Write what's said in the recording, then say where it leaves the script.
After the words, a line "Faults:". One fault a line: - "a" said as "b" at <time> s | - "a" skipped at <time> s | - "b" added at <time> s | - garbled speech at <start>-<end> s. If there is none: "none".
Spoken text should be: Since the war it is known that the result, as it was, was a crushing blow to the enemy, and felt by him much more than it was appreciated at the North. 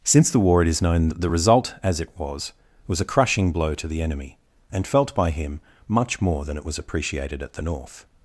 Since the war it is known that the result, as it was, was a crushing blow to the enemy, and felt by him much more than it was appreciated at the North.
Faults:
none